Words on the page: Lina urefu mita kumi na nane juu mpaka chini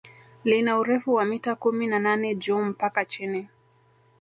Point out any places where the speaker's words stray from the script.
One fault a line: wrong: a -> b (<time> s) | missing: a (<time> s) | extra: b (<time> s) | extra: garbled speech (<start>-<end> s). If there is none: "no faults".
extra: wa (1.1 s)